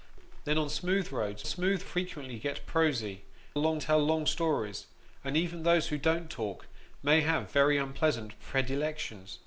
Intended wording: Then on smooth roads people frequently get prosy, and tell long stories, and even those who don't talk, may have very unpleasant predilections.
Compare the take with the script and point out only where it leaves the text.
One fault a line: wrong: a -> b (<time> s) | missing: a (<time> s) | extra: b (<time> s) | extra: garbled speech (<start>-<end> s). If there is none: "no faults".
wrong: people -> smooth (1.5 s)
wrong: and -> long (3.5 s)